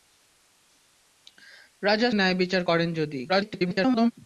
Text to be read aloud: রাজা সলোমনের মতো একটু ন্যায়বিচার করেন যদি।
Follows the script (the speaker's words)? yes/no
no